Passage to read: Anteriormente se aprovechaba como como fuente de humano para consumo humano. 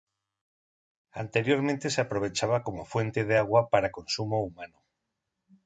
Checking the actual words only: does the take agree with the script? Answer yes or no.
no